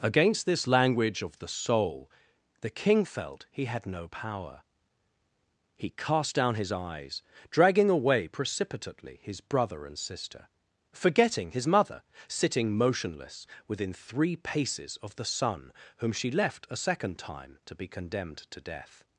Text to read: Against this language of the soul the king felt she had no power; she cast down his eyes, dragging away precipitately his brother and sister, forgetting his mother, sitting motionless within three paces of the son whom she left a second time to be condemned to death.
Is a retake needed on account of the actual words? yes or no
yes